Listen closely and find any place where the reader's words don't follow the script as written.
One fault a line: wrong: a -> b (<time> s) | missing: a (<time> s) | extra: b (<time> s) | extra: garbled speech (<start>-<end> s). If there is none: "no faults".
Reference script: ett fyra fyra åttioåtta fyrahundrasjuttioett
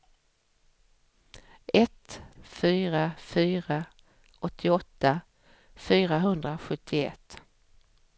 no faults